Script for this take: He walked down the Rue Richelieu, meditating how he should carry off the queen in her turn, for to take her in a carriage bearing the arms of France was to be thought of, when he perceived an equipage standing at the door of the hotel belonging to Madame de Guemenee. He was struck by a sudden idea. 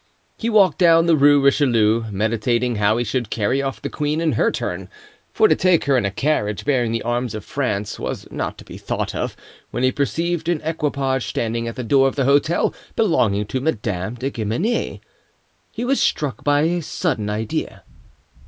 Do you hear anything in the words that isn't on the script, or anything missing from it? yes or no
yes